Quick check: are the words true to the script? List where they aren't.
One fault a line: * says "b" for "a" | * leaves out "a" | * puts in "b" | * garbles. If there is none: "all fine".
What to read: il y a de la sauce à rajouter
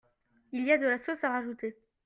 all fine